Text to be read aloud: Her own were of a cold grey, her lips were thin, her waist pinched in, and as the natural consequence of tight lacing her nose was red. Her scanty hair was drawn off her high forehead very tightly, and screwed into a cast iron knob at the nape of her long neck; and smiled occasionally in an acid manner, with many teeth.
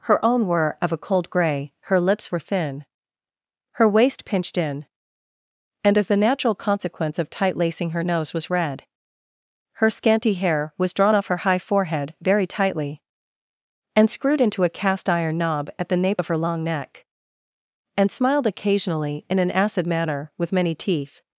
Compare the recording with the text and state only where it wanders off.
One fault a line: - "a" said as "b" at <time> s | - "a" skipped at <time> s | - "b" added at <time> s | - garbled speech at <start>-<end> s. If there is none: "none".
none